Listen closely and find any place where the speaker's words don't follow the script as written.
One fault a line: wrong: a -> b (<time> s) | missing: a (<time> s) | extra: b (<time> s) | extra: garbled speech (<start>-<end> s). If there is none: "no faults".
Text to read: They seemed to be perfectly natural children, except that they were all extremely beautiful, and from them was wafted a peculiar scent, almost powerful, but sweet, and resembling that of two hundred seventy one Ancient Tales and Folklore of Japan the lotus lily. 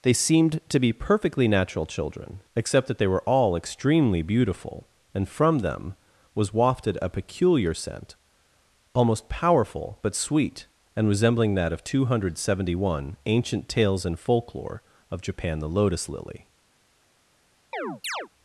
no faults